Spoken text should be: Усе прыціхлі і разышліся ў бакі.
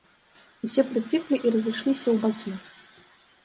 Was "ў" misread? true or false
false